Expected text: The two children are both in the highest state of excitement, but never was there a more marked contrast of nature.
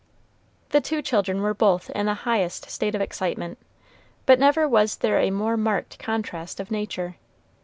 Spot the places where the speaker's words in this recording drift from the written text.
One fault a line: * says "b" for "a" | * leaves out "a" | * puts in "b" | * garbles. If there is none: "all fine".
* says "were" for "are"